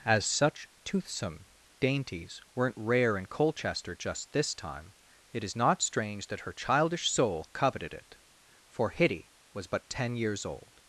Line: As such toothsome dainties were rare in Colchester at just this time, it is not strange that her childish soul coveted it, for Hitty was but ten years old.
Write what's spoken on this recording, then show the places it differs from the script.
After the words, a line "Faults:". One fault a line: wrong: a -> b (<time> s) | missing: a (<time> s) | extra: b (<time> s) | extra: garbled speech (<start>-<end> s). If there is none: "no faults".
As such toothsome dainties weren't rare in Colchester just this time, it is not strange that her childish soul coveted it, for Hitty was but ten years old.
Faults:
wrong: were -> weren't (2.6 s)
missing: at (4.0 s)